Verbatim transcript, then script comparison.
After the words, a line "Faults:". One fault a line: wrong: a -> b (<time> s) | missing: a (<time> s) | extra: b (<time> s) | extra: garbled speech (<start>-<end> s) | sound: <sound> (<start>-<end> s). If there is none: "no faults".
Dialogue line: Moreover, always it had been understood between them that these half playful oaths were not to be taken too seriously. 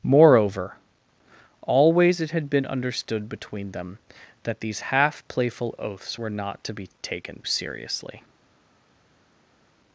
Moreover, always it had been understood between them that these half playful oaths were not to be taken seriously.
Faults:
missing: too (7.4 s)